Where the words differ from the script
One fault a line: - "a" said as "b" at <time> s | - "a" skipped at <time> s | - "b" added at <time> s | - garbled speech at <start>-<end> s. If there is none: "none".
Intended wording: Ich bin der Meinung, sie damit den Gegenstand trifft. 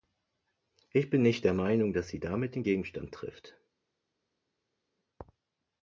- "nicht" added at 1.2 s
- "dass" added at 1.9 s